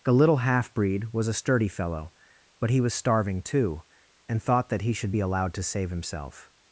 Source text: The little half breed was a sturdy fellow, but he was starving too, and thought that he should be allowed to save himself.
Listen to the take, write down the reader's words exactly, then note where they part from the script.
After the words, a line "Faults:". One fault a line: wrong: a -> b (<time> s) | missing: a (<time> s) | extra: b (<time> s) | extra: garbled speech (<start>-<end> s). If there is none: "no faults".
The little half breed was a sturdy fellow, but he was starving too, and thought that he should be allowed to save himself.
Faults:
no faults